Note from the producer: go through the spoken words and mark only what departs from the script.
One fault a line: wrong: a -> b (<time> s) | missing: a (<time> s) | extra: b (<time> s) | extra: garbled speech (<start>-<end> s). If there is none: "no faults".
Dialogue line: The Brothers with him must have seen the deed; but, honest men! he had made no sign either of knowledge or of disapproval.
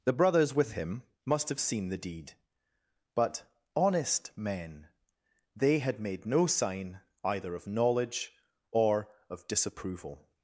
wrong: he -> they (5.5 s)